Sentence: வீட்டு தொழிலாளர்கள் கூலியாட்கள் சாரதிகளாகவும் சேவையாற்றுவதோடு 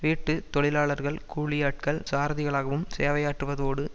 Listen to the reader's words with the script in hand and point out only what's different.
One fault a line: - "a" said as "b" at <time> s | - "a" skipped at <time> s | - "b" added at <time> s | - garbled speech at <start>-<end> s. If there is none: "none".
none